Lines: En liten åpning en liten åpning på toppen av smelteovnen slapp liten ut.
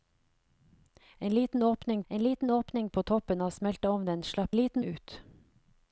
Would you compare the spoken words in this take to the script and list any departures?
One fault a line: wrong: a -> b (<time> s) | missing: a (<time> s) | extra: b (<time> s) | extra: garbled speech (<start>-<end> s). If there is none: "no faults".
no faults